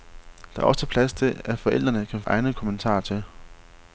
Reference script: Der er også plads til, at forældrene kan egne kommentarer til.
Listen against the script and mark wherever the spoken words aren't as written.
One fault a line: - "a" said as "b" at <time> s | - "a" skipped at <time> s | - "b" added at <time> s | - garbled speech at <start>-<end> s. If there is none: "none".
none